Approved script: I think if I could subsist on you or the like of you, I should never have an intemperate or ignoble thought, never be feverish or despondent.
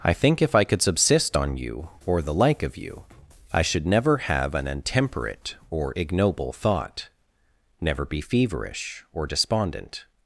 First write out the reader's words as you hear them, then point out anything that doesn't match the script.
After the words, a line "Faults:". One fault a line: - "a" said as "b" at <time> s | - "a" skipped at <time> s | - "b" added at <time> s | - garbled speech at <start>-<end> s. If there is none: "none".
I think if I could subsist on you or the like of you, I should never have an intemperate or ignoble thought, never be feverish or despondent.
Faults:
none